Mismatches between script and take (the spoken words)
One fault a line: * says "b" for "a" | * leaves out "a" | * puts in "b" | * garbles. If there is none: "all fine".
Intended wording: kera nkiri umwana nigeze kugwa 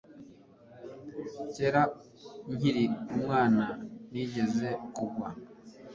all fine